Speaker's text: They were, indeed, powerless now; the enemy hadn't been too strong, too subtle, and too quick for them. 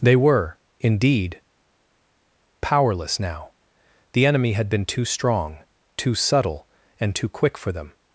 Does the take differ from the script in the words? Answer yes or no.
yes